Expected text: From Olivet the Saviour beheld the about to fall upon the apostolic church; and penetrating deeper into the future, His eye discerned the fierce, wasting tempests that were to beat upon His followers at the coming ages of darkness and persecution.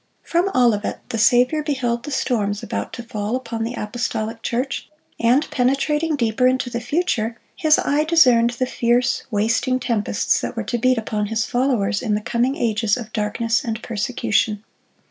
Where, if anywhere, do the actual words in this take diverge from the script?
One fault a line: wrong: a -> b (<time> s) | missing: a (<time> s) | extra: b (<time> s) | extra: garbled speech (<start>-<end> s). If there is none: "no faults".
extra: storms (2.1 s)
wrong: at -> in (12.0 s)